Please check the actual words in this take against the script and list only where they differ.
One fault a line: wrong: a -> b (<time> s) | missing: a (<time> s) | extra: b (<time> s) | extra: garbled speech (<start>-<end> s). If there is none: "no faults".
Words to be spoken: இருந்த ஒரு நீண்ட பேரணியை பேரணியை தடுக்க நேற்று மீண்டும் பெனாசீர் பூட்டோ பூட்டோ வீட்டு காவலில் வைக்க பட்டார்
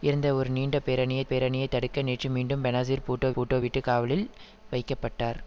no faults